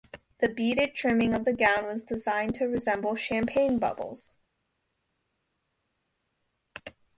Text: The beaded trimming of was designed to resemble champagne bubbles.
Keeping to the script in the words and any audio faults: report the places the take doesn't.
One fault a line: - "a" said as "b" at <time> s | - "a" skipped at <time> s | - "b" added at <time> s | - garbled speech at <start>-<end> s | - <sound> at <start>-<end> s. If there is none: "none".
- "the gown" added at 1.4 s